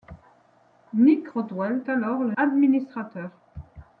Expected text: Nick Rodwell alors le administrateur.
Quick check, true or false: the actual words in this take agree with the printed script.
true